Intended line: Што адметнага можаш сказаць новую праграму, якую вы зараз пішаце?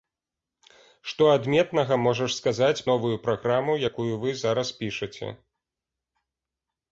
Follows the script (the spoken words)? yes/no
yes